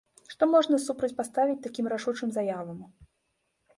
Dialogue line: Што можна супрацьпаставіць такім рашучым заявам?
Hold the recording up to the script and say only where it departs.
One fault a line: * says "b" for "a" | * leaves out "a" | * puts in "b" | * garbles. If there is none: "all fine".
all fine